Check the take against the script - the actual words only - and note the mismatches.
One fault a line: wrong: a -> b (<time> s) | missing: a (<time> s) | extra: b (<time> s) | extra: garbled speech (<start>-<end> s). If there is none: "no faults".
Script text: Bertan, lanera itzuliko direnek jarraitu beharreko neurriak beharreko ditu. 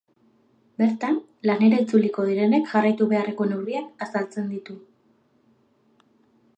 wrong: beharreko -> azaltzen (4.1 s)